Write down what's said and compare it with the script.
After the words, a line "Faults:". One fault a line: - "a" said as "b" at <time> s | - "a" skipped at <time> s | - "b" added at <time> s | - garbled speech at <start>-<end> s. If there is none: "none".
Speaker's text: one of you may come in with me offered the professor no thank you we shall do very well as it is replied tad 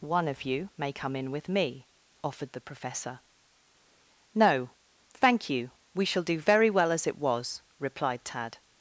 one of you may come in with me offered the professor no thank you we shall do very well as it was replied tad
Faults:
- "is" said as "was" at 7.2 s